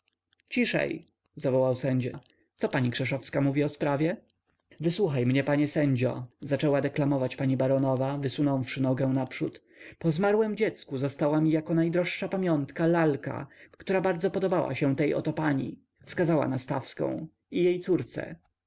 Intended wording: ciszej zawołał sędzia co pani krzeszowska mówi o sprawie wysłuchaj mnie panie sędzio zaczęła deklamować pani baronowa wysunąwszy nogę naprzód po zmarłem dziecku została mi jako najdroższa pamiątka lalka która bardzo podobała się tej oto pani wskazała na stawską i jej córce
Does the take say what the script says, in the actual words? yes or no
yes